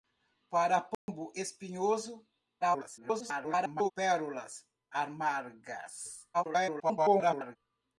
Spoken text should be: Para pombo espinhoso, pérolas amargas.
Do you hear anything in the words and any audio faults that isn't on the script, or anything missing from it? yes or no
yes